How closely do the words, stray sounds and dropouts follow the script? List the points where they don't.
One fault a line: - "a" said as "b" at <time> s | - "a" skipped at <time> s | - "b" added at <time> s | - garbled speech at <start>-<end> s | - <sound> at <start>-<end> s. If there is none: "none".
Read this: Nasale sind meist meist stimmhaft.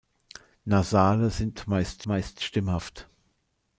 none